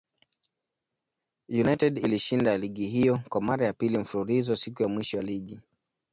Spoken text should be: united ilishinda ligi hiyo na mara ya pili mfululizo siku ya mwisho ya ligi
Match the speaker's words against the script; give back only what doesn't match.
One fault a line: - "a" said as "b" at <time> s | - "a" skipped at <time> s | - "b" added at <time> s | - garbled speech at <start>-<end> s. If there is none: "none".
- "na" said as "kwa" at 3.3 s